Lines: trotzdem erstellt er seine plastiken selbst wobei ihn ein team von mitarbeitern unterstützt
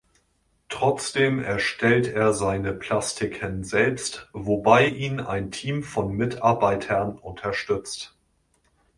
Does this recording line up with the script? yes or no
yes